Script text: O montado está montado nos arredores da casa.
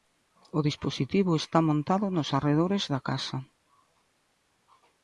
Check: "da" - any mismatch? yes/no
no